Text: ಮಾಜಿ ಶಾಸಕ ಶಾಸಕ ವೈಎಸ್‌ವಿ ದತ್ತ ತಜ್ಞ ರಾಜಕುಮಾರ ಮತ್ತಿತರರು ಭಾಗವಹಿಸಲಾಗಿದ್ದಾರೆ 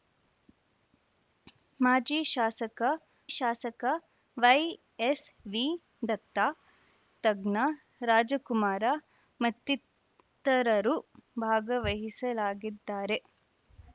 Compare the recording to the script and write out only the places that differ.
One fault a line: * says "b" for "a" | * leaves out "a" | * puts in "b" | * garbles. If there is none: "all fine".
all fine